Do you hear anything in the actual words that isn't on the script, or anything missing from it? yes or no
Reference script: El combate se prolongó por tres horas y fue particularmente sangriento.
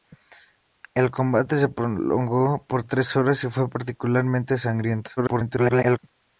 yes